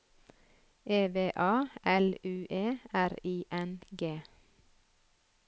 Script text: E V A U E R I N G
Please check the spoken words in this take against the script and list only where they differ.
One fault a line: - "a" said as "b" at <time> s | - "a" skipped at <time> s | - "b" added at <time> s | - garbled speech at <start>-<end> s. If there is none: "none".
- "L" added at 1.8 s